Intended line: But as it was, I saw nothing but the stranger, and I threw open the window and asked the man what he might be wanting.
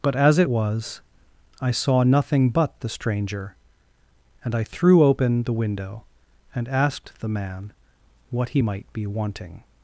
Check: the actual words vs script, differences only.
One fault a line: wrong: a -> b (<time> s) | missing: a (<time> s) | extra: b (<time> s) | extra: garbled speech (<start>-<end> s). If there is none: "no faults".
no faults